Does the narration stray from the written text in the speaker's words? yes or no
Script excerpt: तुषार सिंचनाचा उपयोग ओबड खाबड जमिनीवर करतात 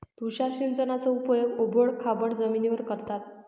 no